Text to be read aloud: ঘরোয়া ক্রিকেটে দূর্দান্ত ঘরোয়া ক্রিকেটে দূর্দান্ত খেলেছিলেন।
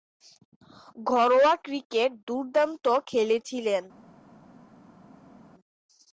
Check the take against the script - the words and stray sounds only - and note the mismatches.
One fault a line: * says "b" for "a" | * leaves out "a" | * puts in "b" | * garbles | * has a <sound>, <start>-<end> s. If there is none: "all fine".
* leaves out "ঘরোয়া ক্রিকেটে দূর্দান্ত"